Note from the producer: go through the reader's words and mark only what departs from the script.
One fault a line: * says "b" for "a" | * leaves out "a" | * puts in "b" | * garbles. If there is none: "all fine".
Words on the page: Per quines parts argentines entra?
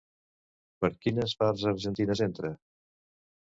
all fine